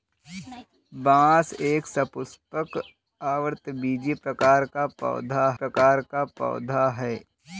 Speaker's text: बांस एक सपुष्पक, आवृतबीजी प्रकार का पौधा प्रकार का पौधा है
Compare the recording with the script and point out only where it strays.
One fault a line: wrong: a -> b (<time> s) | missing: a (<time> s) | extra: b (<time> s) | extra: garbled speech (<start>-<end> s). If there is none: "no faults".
no faults